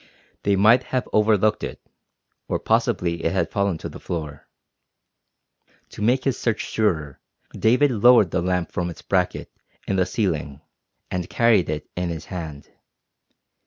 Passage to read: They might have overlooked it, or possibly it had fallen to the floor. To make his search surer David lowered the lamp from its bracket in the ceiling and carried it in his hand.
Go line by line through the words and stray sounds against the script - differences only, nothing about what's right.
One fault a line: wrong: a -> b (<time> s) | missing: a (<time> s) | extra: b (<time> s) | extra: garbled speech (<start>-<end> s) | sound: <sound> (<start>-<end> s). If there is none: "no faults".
no faults